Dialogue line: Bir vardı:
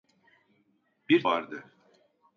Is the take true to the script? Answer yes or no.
yes